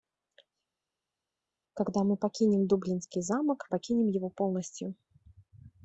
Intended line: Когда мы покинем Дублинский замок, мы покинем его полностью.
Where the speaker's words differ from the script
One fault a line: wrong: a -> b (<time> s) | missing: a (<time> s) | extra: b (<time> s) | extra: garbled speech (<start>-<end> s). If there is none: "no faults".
missing: мы (3.6 s)